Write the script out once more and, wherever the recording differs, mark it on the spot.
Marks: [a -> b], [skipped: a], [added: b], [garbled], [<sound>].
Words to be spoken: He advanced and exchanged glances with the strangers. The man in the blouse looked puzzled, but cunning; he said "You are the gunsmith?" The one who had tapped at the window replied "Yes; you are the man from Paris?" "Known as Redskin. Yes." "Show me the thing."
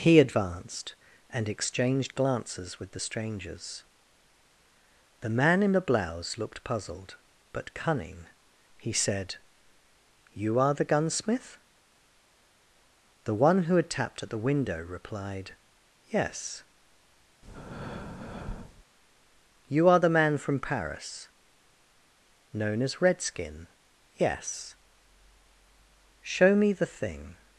He advanced and exchanged glances with the strangers. The man in the blouse looked puzzled, but cunning; he said "You are the gunsmith?" The one who had tapped at the window replied "Yes; [breath] you are the man from Paris?" "Known as Redskin. Yes." "Show me the thing."